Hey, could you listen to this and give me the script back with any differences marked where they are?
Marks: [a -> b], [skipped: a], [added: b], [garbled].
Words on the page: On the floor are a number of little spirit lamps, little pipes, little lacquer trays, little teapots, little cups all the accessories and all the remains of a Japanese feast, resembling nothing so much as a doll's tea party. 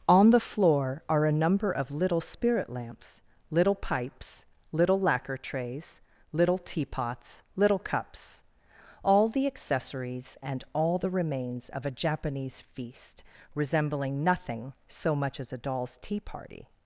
On the floor are a number of little spirit lamps, little pipes, little lacquer trays, little teapots, little cups all the accessories and all the remains of a Japanese feast, resembling nothing so much as a doll's tea party.